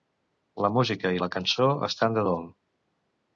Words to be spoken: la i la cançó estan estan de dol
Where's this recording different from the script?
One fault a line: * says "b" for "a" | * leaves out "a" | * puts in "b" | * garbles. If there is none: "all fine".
* puts in "música"
* leaves out "estan"